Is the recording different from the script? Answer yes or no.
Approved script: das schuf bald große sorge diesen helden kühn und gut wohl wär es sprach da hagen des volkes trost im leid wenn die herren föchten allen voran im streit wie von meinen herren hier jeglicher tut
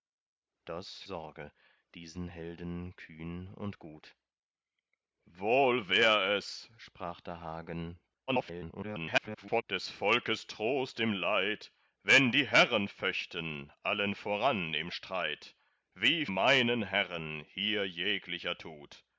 yes